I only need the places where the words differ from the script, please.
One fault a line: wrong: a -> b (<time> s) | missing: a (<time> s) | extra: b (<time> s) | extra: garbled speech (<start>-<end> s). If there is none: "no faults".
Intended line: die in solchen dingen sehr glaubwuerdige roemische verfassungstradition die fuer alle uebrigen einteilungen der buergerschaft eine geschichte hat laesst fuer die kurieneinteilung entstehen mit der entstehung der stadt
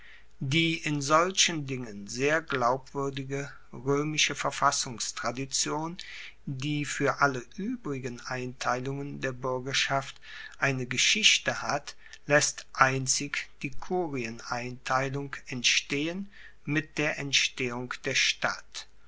wrong: fuer -> einzig (12.7 s)